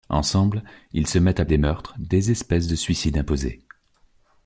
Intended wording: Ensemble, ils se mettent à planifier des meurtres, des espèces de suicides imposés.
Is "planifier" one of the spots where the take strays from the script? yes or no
yes